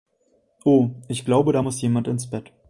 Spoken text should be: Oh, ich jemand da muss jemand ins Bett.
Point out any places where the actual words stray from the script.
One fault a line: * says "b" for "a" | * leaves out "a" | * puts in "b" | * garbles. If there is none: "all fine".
* says "glaube" for "jemand"